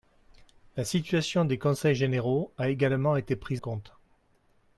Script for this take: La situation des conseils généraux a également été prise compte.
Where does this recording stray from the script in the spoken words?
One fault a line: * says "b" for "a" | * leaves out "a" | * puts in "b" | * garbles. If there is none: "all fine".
all fine